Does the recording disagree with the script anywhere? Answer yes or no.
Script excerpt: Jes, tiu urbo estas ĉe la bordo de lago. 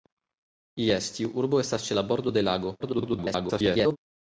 yes